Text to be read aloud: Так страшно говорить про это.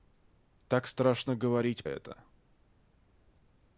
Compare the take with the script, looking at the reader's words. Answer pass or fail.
fail